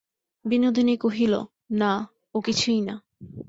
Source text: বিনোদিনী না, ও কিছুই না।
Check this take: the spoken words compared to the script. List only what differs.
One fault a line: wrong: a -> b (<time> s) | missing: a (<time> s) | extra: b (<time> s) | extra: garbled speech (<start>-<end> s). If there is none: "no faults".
extra: কহিল (1.0 s)